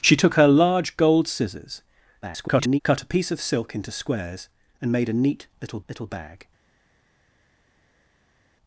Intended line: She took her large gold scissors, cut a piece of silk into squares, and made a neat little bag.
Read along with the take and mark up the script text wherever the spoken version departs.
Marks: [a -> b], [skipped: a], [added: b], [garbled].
She took her large gold scissors, [garbled] cut a piece of silk into squares, and made a neat little [added: little] bag.